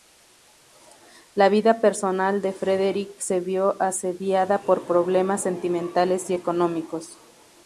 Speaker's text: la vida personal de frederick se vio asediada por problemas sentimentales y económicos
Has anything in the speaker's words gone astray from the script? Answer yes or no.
no